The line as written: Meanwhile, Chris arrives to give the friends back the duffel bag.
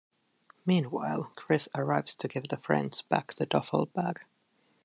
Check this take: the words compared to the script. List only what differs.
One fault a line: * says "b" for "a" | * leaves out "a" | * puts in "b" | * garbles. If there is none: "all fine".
all fine